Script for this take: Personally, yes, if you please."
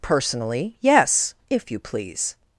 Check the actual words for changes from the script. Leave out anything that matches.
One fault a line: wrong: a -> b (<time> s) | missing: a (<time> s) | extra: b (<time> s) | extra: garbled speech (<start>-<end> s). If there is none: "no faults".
no faults